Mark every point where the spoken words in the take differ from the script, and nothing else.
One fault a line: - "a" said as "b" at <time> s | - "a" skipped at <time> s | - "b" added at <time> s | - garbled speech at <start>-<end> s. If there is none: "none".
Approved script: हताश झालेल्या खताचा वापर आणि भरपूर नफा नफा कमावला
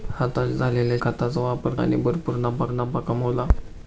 none